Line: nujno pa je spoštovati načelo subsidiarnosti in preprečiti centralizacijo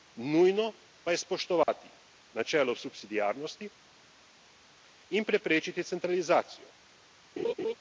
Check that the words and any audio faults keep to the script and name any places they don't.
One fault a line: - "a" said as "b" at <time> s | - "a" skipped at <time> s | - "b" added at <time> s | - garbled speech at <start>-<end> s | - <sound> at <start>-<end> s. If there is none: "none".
- dropout at 1.6-1.7 s
- laugh at 7.4-7.7 s